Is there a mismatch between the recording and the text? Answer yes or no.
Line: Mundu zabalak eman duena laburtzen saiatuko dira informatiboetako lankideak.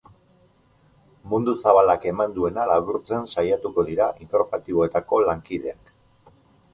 no